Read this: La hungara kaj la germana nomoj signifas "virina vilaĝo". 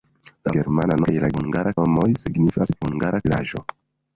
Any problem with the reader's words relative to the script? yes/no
yes